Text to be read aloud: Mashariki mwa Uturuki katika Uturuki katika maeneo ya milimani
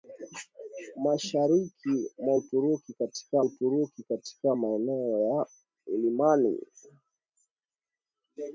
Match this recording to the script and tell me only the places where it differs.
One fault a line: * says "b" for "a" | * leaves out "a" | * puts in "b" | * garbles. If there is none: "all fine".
all fine